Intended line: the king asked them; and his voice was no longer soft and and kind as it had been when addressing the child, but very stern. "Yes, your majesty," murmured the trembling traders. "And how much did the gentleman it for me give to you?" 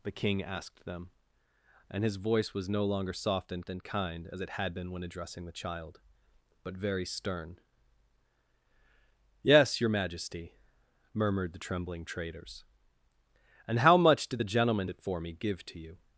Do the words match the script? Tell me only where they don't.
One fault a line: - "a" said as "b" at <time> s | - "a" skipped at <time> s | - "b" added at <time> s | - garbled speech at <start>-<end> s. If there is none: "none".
none